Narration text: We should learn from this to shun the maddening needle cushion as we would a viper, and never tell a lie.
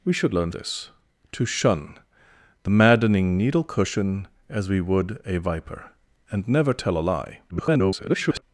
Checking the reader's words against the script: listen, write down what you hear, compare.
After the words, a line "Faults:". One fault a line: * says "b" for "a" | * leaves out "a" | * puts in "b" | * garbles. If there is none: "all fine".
We should learn this to shun the maddening needle cushion as we would a viper, and never tell a lie. [garbled]
Faults:
* leaves out "from"
* garbles